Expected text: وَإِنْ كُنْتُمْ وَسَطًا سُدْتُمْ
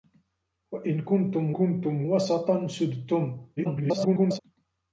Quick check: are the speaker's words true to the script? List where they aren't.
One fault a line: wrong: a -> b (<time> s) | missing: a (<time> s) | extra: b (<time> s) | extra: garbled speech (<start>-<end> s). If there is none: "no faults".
extra: كُنْتُمْ (1.5 s)
extra: garbled speech (3.6-4.4 s)